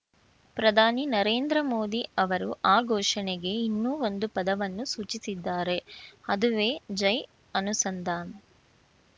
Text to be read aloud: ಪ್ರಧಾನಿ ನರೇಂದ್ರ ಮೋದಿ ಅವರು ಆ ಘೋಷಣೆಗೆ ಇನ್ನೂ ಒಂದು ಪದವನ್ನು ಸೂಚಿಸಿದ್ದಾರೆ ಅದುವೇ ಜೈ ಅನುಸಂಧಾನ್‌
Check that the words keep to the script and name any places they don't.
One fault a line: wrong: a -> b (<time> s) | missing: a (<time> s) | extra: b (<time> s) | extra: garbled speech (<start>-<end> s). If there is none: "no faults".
no faults